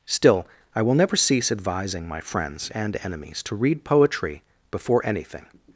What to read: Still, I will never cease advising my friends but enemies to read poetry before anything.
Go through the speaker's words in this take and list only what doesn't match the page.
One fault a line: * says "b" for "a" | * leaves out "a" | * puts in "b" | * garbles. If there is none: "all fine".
* says "and" for "but"